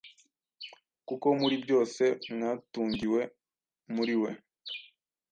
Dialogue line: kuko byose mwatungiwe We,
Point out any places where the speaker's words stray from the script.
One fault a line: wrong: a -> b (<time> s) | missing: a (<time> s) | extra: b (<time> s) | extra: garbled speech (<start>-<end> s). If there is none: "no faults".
extra: muri (1.4 s)
extra: muri (3.9 s)